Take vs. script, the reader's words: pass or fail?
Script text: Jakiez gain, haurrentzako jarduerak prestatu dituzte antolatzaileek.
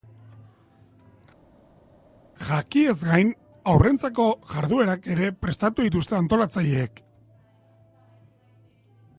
fail